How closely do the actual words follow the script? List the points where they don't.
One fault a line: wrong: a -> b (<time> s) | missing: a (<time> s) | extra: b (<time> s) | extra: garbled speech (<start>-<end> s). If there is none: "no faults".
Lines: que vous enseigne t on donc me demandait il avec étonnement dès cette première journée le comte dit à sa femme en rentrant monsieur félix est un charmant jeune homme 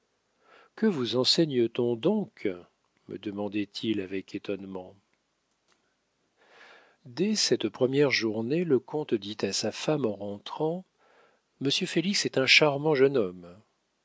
no faults